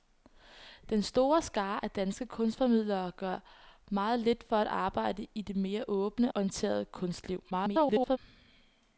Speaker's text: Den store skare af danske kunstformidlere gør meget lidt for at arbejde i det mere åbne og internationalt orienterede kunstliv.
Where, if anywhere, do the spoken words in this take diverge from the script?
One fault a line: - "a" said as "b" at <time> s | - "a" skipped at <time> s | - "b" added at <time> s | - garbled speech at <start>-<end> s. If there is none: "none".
- "og internationalt" skipped at 6.3 s
- garbled speech at 7.5-8.2 s